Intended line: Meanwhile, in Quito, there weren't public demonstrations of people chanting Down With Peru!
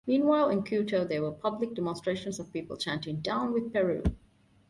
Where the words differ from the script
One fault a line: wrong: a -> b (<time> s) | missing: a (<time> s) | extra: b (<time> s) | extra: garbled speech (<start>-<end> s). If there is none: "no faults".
wrong: weren't -> were (1.2 s)